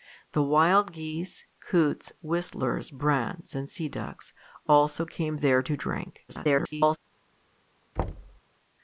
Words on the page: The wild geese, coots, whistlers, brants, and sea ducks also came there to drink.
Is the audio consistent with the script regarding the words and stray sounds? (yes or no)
no